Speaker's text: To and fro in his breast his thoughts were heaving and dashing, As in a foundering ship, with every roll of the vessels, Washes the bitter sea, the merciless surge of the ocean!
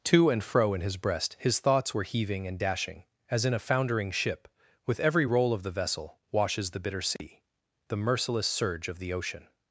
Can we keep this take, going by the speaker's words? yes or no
no